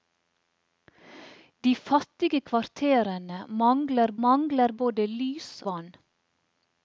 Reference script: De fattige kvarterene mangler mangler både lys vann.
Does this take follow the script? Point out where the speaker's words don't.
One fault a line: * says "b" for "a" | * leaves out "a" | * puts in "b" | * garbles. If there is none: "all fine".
all fine